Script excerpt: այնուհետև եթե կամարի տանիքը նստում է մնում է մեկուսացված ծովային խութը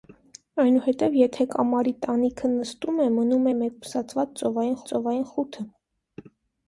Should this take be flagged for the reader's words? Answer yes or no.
yes